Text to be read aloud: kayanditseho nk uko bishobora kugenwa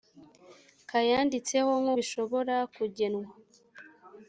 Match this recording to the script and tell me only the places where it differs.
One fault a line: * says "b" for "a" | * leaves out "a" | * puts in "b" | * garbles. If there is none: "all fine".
* leaves out "uko"